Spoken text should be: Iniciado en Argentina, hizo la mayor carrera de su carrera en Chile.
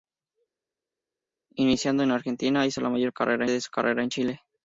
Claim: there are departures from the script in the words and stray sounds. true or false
false